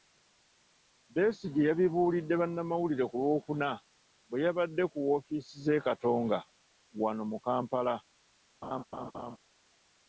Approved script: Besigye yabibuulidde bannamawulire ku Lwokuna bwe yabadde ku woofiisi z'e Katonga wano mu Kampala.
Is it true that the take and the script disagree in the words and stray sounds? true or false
true